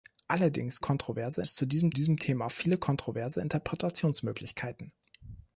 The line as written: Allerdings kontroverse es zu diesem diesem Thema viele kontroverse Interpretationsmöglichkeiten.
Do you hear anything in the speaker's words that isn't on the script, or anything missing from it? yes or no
no